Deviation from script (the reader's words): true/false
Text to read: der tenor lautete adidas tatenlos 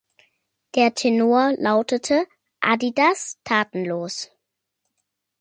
false